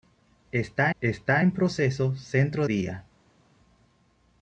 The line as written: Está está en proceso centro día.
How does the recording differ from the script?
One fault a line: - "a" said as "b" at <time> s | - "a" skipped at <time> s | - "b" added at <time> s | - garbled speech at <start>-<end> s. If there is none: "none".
none